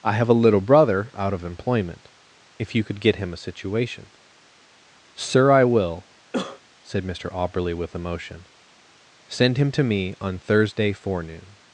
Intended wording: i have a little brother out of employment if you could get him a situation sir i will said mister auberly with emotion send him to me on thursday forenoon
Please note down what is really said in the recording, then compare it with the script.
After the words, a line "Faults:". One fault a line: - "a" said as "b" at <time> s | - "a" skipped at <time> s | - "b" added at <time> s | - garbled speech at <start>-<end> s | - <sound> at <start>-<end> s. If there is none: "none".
i have a little brother out of employment if you could get him a situation sir i will said mister auberly with emotion send him to me on thursday forenoon
Faults:
- cough at 6.3-6.6 s